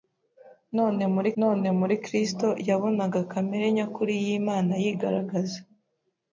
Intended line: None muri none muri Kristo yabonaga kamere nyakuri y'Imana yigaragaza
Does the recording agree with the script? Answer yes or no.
yes